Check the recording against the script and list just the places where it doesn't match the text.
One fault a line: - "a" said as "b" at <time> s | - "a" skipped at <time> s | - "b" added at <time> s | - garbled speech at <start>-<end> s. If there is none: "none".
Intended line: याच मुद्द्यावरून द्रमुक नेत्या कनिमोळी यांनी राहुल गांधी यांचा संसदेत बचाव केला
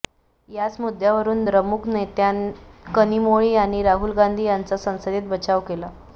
none